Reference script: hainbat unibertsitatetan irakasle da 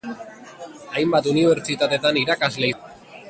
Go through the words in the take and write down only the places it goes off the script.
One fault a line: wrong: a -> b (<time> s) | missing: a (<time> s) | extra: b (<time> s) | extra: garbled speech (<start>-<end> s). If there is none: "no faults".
no faults